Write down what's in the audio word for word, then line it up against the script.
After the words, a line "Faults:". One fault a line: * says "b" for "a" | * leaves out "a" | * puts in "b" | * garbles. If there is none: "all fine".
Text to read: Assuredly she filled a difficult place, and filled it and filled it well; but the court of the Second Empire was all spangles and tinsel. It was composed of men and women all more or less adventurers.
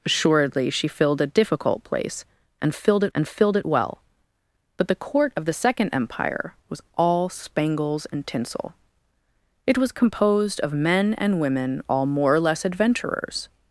Assuredly she filled a difficult place, and filled it and filled it well; but the court of the Second Empire was all spangles and tinsel. It was composed of men and women all more or less adventurers.
Faults:
all fine